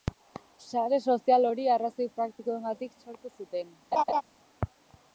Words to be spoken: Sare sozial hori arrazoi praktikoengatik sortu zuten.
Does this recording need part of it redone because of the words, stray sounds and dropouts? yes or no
yes